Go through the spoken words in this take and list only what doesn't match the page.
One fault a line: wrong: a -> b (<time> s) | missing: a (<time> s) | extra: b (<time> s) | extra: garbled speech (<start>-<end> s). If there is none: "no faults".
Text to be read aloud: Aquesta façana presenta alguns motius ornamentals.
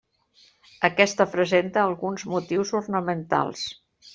missing: façana (1.3 s)